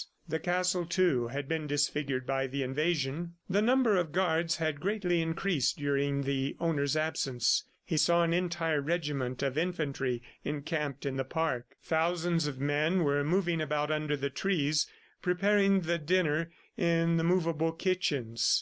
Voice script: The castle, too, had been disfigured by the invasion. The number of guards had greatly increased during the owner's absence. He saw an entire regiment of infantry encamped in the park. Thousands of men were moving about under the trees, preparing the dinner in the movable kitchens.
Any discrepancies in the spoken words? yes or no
no